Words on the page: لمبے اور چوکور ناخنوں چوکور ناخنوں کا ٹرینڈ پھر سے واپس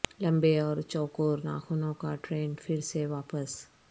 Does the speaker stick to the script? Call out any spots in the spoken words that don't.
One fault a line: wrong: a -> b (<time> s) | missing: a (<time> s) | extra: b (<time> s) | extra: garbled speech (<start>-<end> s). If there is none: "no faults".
missing: چوکور ناخنوں (1.9 s)